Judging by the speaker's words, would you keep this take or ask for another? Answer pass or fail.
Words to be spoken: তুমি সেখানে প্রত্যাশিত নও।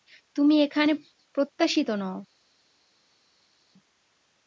fail